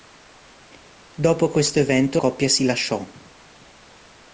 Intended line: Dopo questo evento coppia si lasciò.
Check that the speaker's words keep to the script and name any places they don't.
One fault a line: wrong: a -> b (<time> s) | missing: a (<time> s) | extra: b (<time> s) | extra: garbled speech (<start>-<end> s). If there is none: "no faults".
no faults